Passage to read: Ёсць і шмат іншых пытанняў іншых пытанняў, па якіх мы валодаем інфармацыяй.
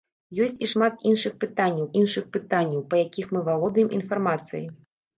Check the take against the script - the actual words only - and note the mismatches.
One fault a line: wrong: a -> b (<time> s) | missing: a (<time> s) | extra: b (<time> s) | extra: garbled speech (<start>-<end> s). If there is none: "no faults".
no faults